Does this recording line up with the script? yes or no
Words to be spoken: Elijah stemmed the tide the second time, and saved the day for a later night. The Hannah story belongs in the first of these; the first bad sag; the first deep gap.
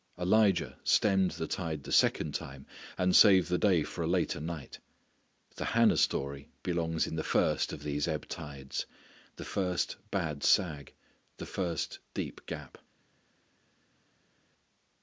no